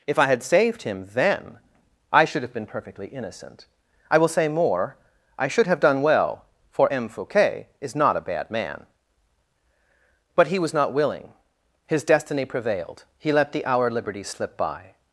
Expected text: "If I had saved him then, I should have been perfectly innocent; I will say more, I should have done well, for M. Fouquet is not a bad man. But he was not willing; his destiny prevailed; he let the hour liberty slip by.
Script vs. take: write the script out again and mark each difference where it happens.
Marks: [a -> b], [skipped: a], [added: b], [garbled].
"If I had saved him then, I should have been perfectly innocent; I will say more, I should have done well, for M. Fouquet is not a bad man. But he was not willing; his destiny prevailed; he let the hour liberty slip by.